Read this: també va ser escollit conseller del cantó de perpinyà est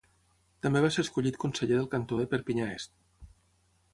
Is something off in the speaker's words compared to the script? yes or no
no